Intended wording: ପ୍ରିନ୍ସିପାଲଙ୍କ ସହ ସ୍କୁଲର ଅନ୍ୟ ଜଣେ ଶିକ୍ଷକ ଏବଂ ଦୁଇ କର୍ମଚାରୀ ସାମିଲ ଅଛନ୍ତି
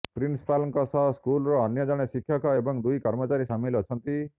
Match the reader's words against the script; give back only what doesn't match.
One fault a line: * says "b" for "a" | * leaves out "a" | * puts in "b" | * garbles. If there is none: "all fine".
all fine